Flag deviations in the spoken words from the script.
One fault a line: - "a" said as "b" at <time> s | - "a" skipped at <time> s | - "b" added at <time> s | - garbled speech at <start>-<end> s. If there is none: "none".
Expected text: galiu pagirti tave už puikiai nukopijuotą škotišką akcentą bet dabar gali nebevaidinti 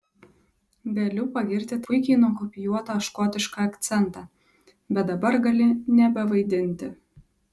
- "tave už" skipped at 1.8 s